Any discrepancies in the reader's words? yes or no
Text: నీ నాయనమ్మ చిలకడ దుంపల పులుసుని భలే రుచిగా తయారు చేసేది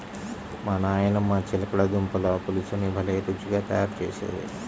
yes